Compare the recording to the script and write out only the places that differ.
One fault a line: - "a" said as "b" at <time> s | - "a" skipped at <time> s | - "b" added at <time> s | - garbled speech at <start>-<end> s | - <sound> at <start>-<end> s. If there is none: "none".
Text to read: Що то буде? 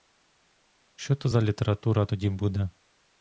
- "за література тоді" added at 1.3 s